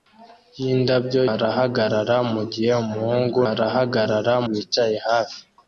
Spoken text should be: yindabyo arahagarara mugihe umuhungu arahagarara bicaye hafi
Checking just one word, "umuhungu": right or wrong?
right